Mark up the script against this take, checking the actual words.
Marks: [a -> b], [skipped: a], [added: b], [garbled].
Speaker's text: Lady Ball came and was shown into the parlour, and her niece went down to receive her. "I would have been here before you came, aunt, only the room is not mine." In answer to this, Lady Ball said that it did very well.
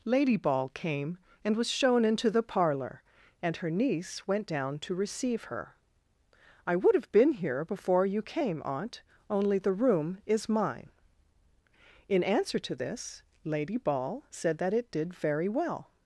Lady Ball came and was shown into the parlour, and her niece went down to receive her. "I would have been here before you came, aunt, only the room is [skipped: not] mine." In answer to this, Lady Ball said that it did very well.